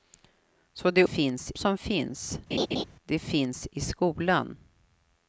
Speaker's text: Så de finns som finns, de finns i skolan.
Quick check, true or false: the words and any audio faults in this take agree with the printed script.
false